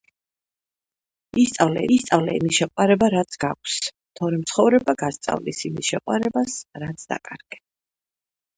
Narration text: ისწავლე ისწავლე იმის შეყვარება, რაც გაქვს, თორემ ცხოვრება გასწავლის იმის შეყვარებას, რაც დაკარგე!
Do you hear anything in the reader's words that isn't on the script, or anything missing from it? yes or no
no